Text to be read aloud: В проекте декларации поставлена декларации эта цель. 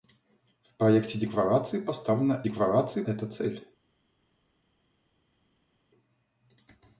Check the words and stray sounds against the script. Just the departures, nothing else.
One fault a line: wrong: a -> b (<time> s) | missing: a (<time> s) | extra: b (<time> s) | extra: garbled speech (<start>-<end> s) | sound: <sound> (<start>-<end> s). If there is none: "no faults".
no faults